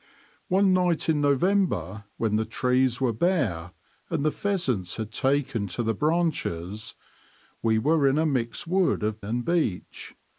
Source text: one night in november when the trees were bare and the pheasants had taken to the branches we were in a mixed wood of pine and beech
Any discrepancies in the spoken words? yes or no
yes